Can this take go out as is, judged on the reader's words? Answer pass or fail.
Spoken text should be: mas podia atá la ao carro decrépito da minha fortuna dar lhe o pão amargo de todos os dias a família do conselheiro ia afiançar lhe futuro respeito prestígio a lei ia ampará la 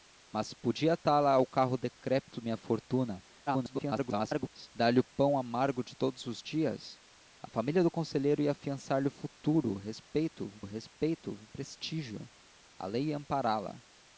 fail